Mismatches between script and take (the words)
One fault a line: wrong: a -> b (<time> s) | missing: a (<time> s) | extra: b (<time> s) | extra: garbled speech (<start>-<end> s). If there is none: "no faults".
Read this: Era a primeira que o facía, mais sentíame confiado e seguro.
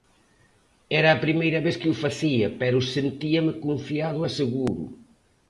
extra: vez (1.6 s)
wrong: mais -> pero (2.6 s)